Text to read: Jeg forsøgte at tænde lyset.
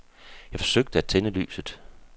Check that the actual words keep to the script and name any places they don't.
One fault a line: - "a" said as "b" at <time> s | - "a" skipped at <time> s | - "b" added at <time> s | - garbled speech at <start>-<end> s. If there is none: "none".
none